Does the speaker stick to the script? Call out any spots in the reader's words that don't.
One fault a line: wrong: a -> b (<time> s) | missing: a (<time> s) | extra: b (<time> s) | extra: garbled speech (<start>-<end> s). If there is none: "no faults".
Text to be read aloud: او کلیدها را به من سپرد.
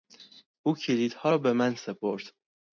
no faults